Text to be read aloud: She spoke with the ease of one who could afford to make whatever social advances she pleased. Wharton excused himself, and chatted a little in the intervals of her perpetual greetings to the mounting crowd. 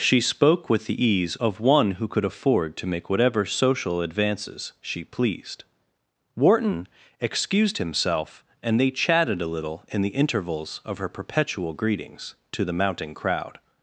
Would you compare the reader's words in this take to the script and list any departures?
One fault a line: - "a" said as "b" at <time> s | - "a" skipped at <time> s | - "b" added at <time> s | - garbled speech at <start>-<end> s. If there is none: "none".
- "they" added at 8.8 s